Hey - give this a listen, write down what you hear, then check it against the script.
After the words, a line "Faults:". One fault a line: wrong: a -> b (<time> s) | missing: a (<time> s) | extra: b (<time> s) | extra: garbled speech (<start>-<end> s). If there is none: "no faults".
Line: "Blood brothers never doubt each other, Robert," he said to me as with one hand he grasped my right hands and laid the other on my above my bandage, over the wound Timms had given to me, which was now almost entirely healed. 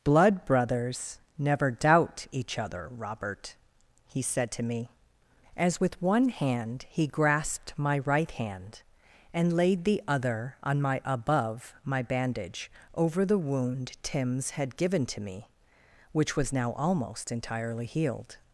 "Blood brothers never doubt each other, Robert," he said to me as with one hand he grasped my right hand and laid the other on my above my bandage, over the wound Timms had given to me, which was now almost entirely healed.
Faults:
wrong: hands -> hand (8.3 s)